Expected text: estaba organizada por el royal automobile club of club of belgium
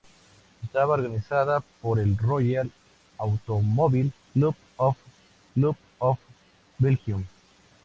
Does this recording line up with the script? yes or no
yes